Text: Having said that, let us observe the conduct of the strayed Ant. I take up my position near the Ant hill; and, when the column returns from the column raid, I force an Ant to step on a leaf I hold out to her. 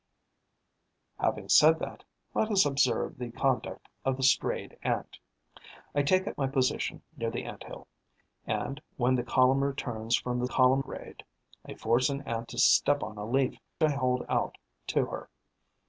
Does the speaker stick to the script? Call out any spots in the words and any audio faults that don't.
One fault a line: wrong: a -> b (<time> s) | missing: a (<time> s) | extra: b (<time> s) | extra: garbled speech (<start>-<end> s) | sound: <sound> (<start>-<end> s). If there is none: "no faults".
no faults